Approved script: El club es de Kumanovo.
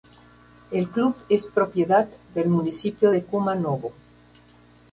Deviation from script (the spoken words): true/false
true